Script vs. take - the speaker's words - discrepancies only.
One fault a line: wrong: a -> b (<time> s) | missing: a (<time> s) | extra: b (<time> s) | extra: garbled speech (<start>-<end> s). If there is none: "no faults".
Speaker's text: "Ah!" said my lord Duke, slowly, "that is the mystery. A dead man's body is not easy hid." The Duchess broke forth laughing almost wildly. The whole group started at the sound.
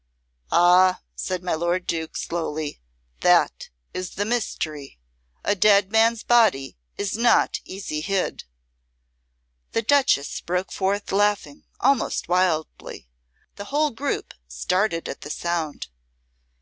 no faults